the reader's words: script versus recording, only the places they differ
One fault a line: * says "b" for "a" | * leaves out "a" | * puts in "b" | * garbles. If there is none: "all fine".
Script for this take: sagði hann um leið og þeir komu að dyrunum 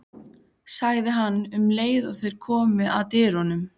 all fine